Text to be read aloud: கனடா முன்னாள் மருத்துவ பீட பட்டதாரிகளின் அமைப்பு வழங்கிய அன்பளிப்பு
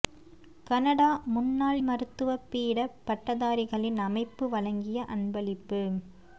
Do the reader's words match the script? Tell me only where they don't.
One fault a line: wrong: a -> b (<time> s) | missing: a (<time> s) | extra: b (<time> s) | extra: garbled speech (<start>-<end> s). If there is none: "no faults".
no faults